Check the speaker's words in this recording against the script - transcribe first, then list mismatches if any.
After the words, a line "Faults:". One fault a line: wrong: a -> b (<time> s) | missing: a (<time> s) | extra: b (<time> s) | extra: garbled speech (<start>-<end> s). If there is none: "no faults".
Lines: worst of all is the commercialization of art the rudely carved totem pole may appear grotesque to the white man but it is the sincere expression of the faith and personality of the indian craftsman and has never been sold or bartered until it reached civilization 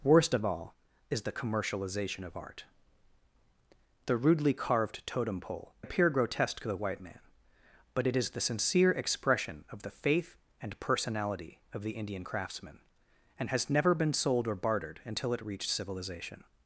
worst of all is the commercialization of art the rudely carved totem pole appear grotesque to the white man but it is the sincere expression of the faith and personality of the indian craftsman and has never been sold or bartered until it reached civilization
Faults:
missing: may (5.7 s)